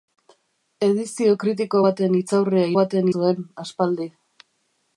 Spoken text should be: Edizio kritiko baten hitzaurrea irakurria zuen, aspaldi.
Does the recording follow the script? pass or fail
fail